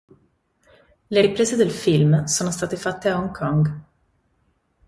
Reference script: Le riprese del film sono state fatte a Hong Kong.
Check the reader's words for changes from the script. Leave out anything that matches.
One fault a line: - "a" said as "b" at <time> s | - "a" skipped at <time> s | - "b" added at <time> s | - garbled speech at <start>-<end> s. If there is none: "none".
none